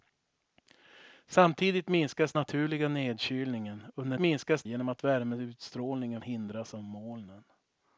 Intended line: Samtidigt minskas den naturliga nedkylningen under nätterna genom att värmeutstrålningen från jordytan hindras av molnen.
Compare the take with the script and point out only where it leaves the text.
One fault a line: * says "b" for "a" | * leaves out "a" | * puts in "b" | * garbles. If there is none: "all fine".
* leaves out "den"
* says "minskas" for "nätterna"
* leaves out "från jordytan"